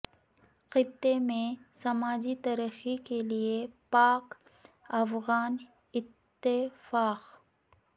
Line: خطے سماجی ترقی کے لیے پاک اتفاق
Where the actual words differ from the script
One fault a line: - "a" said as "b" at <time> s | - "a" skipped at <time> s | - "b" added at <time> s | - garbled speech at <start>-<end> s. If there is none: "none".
- "میں" added at 1.2 s
- "افغان" added at 5.0 s